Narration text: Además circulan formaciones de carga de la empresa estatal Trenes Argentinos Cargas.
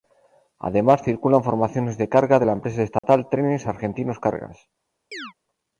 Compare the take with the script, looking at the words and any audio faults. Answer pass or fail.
fail